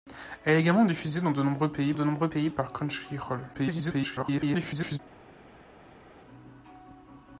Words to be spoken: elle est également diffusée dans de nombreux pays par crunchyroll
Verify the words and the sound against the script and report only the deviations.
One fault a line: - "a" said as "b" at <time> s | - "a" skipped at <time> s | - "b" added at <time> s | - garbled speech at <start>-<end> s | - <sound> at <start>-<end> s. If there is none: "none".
- "de nombreux pays" added at 1.9 s
- garbled speech at 3.5-5.0 s